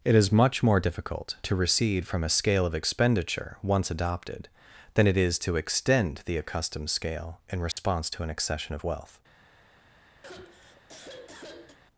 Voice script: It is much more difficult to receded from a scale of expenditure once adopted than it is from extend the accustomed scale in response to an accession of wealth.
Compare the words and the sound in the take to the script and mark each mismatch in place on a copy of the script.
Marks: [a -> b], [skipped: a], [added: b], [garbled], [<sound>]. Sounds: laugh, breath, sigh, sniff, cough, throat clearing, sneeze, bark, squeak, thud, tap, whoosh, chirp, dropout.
It is much more difficult to [receded -> recede] from a scale of expenditure once adopted than it is [from -> to] extend the accustomed scale in response [dropout] to an accession of wealth. [sigh]